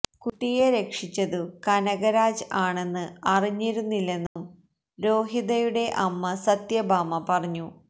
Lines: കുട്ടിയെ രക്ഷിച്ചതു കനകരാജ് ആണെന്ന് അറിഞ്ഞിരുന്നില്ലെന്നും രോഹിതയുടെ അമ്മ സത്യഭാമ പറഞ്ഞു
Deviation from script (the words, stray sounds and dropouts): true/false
true